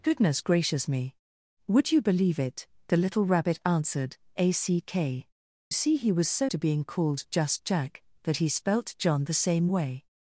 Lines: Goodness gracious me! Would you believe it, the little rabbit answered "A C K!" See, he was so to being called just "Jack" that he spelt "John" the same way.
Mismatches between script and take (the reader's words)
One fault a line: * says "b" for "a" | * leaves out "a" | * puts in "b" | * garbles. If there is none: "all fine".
all fine